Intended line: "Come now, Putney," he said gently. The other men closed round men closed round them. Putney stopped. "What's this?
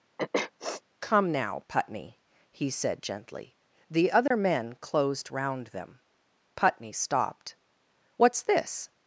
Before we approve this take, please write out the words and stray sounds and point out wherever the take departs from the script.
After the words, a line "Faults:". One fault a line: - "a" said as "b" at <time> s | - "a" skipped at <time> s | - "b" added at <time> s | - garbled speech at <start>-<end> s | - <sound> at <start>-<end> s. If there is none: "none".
"Come now, Putney," he said gently. The other men closed round them. Putney stopped. "What's this?
Faults:
- sniff at 0.2-0.8 s
- dropout at 4.3-4.3 s
- "men closed round" skipped at 5.7 s